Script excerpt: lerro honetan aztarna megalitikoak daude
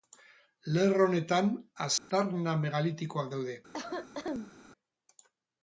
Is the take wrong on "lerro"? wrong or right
right